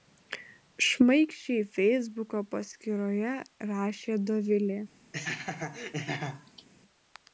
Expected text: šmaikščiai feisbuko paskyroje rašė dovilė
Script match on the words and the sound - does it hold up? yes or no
no